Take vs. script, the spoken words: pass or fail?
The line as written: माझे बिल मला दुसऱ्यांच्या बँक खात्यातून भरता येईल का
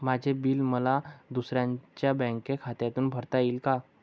pass